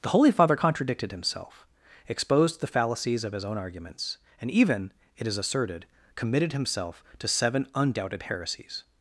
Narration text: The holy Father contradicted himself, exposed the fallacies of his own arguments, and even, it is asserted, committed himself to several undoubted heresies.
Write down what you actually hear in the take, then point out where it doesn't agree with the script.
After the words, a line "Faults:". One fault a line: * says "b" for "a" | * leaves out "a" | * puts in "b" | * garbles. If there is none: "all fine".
The holy Father contradicted himself, exposed the fallacies of his own arguments, and even, it is asserted, committed himself to seven undoubted heresies.
Faults:
* says "seven" for "several"